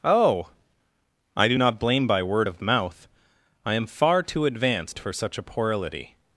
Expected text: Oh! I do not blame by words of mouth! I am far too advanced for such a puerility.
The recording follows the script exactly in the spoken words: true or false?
false